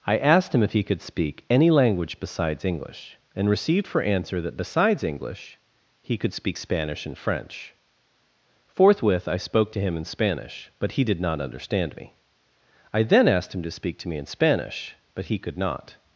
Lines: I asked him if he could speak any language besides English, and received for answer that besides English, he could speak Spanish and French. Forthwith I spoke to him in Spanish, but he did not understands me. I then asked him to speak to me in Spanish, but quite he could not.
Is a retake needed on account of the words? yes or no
yes